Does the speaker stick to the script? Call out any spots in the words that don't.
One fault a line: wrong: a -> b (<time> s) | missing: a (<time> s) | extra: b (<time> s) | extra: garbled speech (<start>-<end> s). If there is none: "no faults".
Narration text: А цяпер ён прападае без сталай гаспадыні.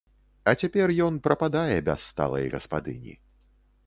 no faults